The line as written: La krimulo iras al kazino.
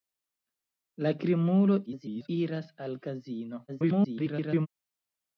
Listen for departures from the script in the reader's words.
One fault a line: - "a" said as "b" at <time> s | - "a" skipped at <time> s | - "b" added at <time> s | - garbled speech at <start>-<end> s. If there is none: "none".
- garbled speech at 1.9-2.3 s
- garbled speech at 3.7-4.7 s